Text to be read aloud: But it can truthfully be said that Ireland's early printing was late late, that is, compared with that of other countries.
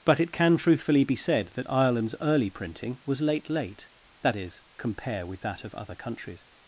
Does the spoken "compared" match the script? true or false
false